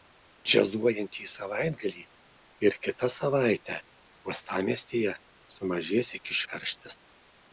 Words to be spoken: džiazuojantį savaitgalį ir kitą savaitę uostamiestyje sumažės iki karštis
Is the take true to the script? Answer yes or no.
yes